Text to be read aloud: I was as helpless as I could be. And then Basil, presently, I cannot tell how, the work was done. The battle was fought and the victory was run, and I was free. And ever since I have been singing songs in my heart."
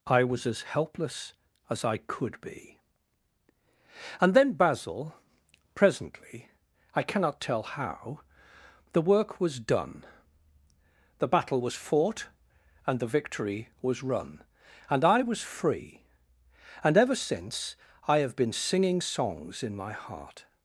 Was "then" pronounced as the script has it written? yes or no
yes